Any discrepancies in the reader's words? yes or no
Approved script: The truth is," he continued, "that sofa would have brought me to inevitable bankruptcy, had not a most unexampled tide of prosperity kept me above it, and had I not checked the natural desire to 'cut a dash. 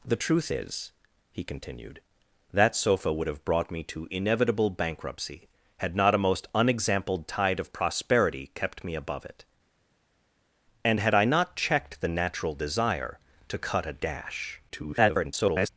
yes